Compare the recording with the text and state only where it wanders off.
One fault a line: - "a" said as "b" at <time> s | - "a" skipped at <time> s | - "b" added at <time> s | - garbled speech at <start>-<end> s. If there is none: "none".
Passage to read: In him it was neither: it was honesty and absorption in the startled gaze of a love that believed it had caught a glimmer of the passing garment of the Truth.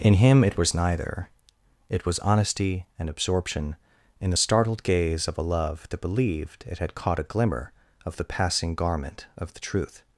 none